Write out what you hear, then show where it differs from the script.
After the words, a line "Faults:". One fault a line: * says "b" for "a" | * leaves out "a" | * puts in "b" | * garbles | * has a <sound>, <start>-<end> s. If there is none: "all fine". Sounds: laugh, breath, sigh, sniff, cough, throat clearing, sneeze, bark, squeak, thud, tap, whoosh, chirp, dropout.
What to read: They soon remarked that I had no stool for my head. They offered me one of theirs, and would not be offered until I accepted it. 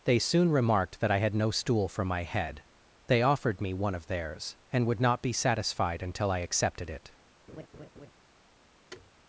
They soon remarked that I had no stool for my head. They offered me one of theirs, and would not be satisfied until I accepted it.
Faults:
* says "satisfied" for "offered"
* has a laugh, 7.5-8.1 s
* has a thud, 8.9-9.1 s